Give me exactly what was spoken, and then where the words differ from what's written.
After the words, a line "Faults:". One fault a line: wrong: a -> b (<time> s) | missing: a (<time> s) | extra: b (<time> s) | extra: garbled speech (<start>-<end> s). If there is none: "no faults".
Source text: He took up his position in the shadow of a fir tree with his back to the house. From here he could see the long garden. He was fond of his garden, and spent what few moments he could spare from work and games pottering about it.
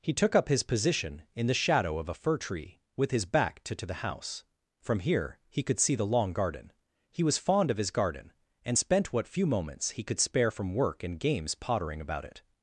He took up his position in the shadow of a fir tree with his back to to the house. From here he could see the long garden. He was fond of his garden, and spent what few moments he could spare from work and games pottering about it.
Faults:
extra: to (3.8 s)